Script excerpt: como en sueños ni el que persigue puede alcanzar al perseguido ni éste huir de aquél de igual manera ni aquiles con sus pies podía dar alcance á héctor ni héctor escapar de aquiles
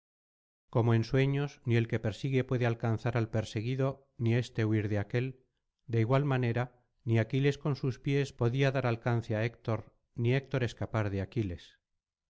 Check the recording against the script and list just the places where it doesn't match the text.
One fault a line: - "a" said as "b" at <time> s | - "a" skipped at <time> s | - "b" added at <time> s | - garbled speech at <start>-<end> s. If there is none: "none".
none